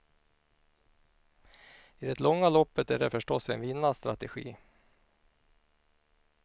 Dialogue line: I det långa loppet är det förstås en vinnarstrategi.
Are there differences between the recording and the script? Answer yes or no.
no